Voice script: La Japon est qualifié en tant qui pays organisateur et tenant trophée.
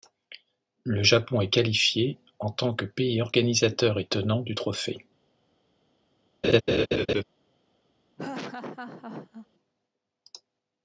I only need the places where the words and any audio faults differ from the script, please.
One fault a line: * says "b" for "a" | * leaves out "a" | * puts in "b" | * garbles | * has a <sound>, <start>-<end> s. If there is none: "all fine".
* says "Le" for "La"
* says "que" for "qui"
* puts in "du"
* has a laugh, 6.4-7.2 s
* has a laugh, 8.2-9.5 s